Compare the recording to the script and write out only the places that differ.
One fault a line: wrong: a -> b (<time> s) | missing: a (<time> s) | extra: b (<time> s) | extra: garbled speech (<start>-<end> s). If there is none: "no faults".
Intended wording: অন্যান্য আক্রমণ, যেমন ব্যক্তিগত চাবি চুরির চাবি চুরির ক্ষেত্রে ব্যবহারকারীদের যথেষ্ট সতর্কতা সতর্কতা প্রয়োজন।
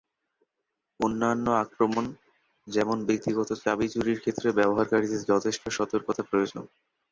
missing: চাবি চুরির (4.2 s)
missing: সতর্কতা (6.2 s)